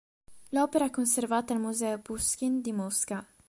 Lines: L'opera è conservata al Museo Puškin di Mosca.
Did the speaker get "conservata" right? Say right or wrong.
right